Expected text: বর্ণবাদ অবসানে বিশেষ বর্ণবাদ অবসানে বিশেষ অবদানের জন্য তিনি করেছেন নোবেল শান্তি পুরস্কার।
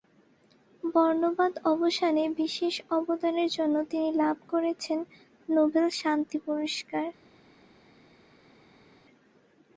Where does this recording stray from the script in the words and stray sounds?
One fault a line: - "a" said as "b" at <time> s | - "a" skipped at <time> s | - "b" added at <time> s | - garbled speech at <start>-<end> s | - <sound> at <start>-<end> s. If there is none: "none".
- "বর্ণবাদ অবসানে বিশেষ" skipped at 2.7 s
- "লাভ" added at 4.2 s